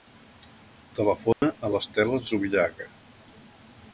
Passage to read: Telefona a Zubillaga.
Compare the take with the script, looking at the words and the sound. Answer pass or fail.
fail